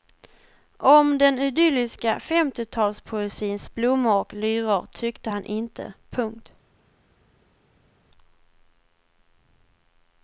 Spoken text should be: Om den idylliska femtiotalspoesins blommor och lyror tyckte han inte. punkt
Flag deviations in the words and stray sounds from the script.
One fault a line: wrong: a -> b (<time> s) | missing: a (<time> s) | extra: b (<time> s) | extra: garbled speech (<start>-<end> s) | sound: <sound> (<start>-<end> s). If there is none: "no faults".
no faults